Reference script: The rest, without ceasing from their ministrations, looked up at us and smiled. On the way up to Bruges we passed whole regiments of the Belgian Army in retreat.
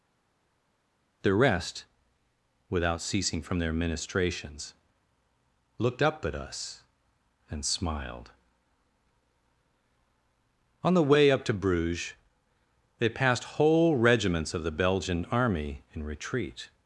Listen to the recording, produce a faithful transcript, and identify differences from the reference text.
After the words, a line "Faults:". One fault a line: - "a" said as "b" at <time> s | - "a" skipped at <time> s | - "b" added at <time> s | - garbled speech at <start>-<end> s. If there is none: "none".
The rest, without ceasing from their ministrations, looked up at us and smiled. On the way up to Bruges they passed whole regiments of the Belgian Army in retreat.
Faults:
- "we" said as "they" at 13.0 s